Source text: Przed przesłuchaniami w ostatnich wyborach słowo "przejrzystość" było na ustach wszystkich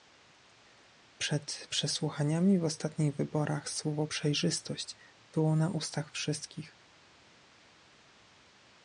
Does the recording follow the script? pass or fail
pass